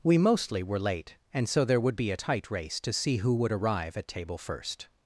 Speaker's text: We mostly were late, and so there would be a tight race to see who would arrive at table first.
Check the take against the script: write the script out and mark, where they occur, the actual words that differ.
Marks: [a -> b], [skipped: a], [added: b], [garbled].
We mostly were late, and so there would be a tight race to see who would arrive at table first.